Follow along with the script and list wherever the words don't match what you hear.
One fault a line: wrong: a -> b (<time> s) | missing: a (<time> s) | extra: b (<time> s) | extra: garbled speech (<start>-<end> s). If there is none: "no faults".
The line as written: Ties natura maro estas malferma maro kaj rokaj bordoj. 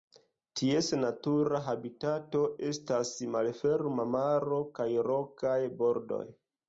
wrong: maro -> habitato (1.7 s)